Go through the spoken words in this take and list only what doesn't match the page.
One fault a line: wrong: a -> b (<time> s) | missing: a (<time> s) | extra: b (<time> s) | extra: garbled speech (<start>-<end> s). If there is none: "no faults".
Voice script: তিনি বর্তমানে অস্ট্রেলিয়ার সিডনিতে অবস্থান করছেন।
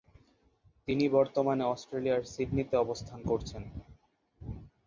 no faults